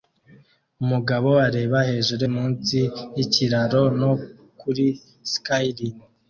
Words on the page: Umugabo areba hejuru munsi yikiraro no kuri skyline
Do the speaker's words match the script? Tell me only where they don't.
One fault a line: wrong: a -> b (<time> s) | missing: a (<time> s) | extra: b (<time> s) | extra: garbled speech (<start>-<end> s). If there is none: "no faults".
no faults